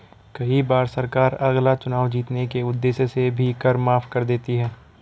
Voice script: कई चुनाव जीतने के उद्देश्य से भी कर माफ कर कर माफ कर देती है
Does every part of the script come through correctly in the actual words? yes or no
no